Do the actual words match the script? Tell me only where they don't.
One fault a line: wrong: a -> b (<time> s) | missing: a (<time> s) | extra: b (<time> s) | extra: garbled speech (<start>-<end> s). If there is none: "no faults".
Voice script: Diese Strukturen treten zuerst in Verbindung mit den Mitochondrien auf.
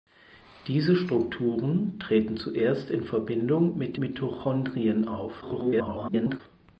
missing: den (4.0 s)
extra: garbled speech (5.4-6.4 s)